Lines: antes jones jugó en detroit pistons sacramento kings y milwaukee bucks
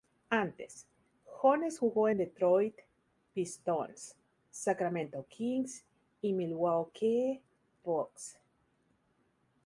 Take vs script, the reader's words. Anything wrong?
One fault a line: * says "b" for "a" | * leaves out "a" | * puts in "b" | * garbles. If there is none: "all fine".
all fine